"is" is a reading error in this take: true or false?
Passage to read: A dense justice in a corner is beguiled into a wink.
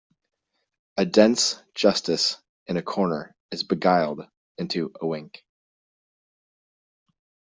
false